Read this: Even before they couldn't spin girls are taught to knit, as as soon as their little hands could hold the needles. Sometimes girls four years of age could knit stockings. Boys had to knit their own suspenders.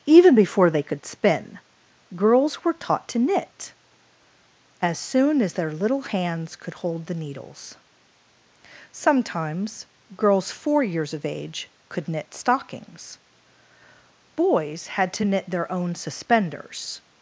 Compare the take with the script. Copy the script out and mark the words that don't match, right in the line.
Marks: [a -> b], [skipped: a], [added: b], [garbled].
Even before they [couldn't -> could] spin girls [are -> were] taught to knit, as [skipped: as] soon as their little hands could hold the needles. Sometimes girls four years of age could knit stockings. Boys had to knit their own suspenders.